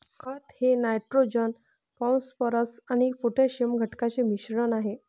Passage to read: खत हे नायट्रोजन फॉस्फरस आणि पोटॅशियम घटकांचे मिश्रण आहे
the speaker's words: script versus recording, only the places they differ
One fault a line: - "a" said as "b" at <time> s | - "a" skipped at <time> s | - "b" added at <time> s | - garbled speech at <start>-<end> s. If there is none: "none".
none